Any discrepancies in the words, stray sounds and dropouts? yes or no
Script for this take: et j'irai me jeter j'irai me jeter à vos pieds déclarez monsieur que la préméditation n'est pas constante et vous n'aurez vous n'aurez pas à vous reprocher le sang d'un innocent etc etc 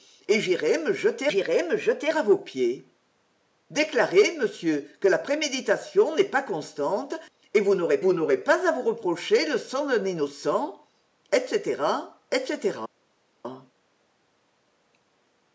no